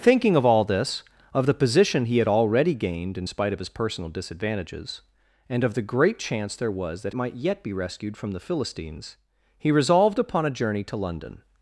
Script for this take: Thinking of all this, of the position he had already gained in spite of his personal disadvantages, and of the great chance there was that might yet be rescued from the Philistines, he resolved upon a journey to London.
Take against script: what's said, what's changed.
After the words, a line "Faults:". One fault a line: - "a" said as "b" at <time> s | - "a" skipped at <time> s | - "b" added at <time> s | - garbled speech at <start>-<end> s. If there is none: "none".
Thinking of all this, of the position he had already gained in spite of his personal disadvantages, and of the great chance there was that might yet be rescued from the Philistines, he resolved upon a journey to London.
Faults:
none